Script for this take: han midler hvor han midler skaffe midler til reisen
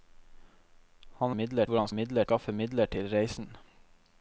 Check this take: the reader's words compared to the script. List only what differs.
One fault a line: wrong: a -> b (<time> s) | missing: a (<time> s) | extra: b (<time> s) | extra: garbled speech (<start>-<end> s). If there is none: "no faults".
no faults